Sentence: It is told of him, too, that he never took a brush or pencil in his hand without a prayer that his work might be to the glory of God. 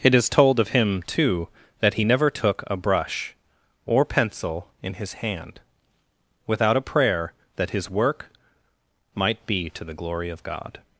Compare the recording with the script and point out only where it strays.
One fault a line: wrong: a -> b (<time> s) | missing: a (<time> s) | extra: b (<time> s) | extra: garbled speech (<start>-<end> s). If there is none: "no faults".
no faults